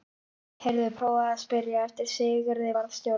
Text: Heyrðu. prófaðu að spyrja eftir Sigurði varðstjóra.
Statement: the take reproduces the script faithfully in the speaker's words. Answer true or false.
true